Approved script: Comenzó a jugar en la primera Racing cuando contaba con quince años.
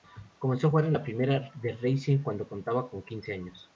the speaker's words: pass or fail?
fail